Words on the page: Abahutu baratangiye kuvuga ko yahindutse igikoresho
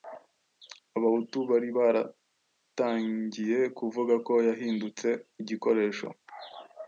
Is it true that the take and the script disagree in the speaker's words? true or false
true